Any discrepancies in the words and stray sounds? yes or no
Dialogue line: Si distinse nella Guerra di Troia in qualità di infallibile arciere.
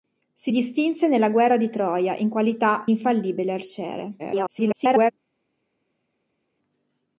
yes